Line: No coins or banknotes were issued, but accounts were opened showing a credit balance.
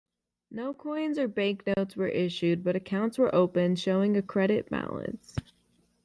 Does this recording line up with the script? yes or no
yes